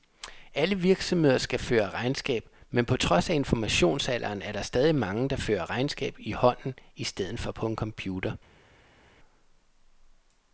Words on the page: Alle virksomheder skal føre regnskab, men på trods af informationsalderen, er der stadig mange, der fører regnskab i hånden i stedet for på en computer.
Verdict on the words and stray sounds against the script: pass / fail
pass